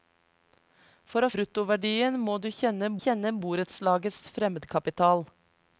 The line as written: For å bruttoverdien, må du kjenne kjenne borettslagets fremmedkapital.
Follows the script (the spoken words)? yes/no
yes